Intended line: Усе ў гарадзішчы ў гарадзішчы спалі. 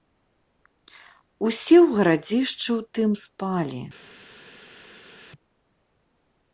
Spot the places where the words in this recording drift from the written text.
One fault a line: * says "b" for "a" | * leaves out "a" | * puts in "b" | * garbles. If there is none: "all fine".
* says "тым" for "гарадзішчы"